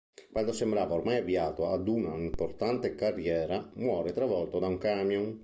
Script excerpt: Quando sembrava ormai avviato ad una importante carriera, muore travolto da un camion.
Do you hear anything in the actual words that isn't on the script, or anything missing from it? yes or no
no